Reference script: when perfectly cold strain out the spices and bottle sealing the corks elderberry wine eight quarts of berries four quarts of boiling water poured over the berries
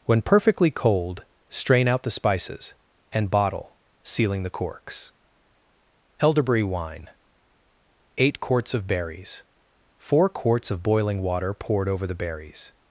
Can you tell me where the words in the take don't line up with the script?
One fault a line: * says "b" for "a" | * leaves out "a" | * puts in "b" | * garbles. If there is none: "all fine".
all fine